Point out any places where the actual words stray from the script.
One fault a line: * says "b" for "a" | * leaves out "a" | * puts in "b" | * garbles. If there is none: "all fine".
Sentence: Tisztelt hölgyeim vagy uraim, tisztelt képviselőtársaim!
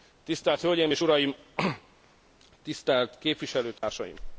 * says "és" for "vagy"